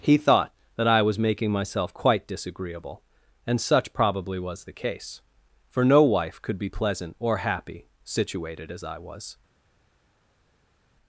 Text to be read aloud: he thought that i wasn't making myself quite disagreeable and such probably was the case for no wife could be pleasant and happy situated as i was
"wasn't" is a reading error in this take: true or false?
true